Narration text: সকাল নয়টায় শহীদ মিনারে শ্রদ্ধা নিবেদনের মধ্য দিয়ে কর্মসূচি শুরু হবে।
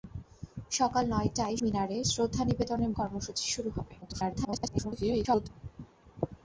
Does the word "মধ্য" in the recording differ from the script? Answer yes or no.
yes